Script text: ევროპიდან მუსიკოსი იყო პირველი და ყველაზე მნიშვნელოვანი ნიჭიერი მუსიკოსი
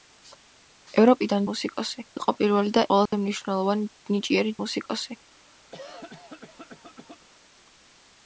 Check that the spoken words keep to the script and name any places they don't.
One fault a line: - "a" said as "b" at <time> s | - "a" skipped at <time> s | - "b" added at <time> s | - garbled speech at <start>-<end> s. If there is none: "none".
none